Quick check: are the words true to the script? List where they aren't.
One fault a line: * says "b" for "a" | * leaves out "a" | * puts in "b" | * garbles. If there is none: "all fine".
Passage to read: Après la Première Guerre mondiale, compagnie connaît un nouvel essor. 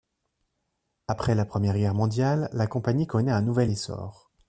* puts in "la"